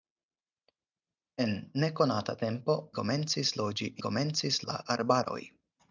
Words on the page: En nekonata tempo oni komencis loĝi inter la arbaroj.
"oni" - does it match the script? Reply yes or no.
no